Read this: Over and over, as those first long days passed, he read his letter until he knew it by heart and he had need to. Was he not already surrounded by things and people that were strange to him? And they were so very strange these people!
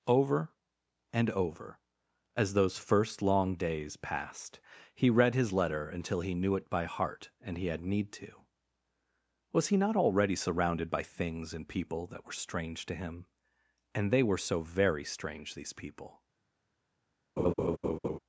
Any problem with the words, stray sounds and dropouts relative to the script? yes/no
yes